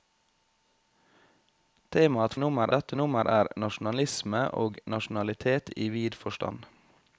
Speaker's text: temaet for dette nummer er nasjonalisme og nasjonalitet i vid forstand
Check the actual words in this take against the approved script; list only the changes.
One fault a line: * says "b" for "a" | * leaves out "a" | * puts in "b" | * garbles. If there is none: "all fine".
* says "nummer" for "for"